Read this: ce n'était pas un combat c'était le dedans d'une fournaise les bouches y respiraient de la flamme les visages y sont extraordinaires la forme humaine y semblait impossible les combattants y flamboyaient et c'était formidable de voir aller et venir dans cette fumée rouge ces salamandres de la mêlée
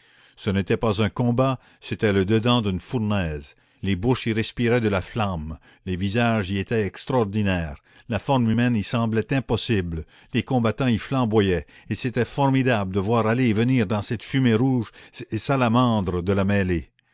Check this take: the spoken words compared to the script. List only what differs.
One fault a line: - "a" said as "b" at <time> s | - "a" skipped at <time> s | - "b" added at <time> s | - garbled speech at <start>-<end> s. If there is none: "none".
- "sont" said as "étaient" at 6.6 s